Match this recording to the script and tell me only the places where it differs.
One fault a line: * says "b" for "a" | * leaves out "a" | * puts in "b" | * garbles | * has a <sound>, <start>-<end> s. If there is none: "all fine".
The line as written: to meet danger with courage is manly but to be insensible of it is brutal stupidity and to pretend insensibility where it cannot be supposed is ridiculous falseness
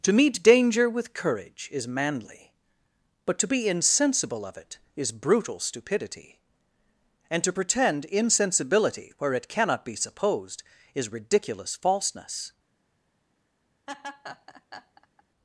* has a laugh, 13.9-15.2 s